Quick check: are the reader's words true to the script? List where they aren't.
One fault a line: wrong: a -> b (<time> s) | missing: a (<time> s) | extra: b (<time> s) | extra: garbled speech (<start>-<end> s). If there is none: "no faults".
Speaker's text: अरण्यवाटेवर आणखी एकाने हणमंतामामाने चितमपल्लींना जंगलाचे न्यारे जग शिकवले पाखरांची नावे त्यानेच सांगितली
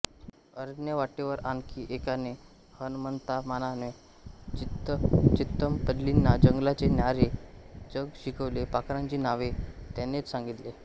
no faults